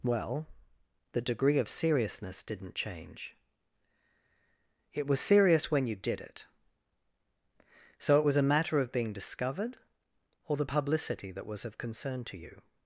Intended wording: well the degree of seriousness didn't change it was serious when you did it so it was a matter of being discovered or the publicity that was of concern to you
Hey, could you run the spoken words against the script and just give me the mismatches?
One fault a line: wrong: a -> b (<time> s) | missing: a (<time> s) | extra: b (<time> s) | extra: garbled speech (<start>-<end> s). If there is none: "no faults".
no faults